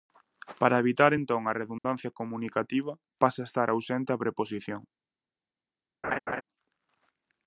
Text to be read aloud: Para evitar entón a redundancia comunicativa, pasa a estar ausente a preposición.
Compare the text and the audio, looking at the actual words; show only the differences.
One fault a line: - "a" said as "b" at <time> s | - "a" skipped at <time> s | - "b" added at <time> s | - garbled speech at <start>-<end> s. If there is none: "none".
none